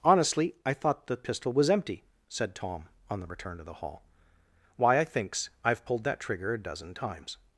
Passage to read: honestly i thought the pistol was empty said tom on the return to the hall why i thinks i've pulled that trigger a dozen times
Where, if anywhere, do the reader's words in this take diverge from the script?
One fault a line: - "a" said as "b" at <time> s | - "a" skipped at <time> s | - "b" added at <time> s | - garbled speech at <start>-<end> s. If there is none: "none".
none